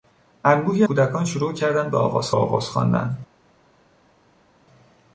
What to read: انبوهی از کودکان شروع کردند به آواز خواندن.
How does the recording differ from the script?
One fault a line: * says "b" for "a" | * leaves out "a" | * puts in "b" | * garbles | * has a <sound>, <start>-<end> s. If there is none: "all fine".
* leaves out "از"
* puts in "آواز"